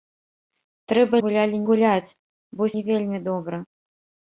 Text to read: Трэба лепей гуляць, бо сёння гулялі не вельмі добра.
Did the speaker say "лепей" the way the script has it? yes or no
no